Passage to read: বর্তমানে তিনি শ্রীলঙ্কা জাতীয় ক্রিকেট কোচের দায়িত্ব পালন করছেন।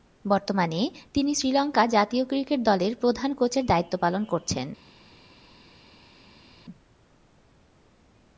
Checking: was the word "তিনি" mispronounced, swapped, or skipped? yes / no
no